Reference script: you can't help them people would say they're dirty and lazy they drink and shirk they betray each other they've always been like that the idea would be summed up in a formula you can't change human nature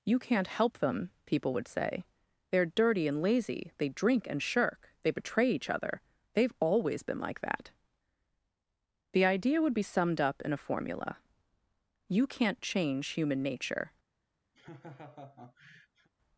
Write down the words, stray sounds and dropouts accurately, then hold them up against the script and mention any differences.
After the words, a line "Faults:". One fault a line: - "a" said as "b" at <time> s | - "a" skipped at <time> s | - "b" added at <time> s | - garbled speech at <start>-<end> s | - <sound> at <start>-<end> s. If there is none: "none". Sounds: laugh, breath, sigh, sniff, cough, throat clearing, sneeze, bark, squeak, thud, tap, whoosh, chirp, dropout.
you can't help them people would say they're dirty and lazy they drink and shirk they betray each other they've always been like that the idea would be summed up in a formula you can't change human nature
Faults:
- laugh at 14.5-16.1 s